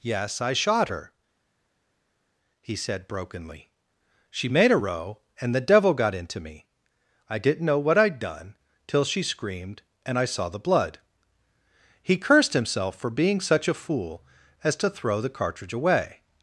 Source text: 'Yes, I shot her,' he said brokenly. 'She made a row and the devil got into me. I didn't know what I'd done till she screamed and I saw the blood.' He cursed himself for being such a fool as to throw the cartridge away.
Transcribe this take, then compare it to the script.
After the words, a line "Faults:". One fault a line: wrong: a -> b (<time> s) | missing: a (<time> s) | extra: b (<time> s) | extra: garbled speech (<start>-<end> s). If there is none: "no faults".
'Yes, I shot her,' he said brokenly. 'She made a row and the devil got into me. I didn't know what I'd done till she screamed and I saw the blood.' He cursed himself for being such a fool as to throw the cartridge away.
Faults:
no faults